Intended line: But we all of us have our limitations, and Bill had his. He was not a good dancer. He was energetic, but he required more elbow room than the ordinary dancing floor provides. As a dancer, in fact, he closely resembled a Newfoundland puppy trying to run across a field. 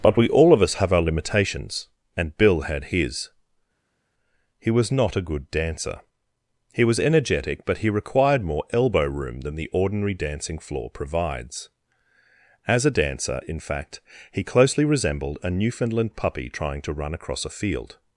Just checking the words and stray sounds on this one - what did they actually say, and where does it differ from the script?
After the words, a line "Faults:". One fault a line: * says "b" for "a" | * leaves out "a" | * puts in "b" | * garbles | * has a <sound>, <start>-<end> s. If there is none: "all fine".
But we all of us have our limitations, and Bill had his. He was not a good dancer. He was energetic, but he required more elbow room than the ordinary dancing floor provides. As a dancer, in fact, he closely resembled a Newfoundland puppy trying to run across a field.
Faults:
all fine